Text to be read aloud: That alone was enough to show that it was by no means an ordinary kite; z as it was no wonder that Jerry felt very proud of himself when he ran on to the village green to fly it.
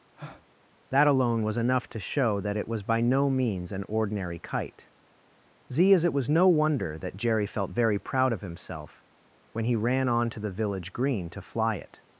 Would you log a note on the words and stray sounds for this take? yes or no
yes